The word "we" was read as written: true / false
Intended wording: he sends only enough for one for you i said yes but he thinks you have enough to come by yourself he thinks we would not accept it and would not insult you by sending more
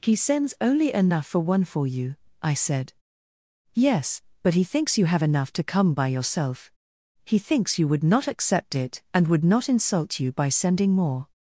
false